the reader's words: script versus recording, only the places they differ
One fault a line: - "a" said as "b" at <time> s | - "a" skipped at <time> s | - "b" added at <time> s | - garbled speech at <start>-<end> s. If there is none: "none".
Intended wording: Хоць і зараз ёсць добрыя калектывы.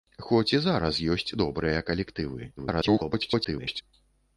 - garbled speech at 2.6-3.8 s